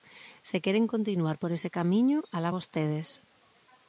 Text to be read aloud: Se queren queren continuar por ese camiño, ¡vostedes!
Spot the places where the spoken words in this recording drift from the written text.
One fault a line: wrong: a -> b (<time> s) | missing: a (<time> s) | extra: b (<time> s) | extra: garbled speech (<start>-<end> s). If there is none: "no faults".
missing: queren (0.8 s)
extra: alá (2.4 s)